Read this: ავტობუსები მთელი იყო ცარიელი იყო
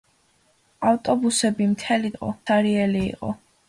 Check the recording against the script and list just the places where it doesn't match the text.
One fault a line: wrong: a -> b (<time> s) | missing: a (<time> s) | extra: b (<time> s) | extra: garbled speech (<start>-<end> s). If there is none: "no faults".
no faults